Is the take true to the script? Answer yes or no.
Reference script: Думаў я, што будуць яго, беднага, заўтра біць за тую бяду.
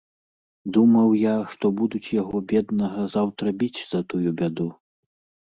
yes